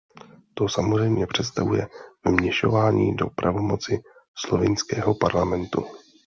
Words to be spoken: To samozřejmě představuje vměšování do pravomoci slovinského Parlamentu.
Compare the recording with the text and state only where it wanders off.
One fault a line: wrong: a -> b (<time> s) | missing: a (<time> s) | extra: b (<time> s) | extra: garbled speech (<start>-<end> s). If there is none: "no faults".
no faults